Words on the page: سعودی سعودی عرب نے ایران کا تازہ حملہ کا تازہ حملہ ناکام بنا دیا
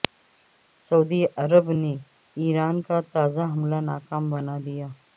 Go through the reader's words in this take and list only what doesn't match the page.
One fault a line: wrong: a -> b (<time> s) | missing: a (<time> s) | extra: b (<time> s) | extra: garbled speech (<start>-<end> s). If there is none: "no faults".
missing: سعودی (1.2 s)
missing: کا تازہ حملہ (3.8 s)